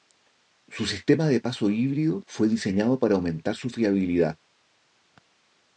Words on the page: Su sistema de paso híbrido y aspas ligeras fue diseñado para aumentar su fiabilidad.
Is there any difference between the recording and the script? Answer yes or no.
yes